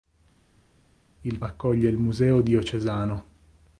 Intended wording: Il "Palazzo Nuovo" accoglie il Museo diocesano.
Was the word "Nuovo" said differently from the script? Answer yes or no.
yes